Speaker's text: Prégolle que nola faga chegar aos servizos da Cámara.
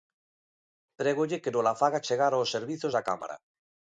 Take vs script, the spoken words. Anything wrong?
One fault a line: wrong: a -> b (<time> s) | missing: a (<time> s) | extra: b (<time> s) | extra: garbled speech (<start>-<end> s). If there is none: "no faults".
no faults